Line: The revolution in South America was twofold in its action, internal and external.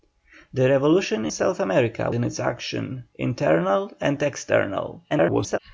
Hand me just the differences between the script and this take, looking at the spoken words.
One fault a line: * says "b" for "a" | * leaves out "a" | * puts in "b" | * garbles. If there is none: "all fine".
* leaves out "in"
* leaves out "was twofold"
* garbles